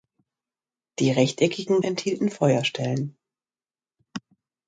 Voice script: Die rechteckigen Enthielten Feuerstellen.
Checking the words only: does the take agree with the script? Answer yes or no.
yes